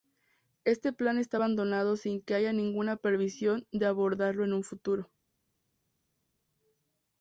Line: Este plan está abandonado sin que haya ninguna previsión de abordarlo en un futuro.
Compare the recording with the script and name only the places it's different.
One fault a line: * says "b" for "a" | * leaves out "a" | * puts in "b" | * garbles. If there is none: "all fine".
all fine